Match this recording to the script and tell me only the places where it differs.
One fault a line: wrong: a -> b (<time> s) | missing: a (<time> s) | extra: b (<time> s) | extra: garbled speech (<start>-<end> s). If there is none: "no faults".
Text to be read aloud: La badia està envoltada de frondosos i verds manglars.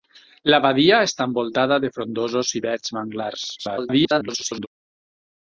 extra: garbled speech (3.6-4.7 s)